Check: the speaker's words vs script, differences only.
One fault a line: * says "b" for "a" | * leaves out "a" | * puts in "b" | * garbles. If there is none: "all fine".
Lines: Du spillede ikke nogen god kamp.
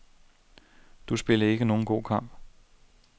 all fine